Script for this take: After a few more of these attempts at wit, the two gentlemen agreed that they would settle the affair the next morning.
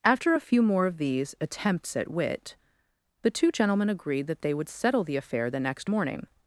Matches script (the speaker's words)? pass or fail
pass